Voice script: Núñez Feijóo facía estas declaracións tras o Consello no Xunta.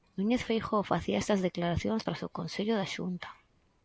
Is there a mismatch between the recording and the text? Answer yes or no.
yes